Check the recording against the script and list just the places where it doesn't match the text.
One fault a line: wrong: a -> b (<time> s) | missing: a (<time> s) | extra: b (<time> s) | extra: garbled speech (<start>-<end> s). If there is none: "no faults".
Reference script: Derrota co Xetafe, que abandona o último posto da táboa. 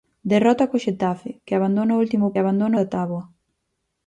wrong: posto -> abandona (2.4 s)